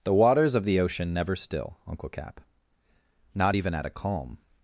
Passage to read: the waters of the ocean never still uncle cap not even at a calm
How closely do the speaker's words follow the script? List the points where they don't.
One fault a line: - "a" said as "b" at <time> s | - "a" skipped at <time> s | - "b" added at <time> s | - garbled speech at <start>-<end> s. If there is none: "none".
none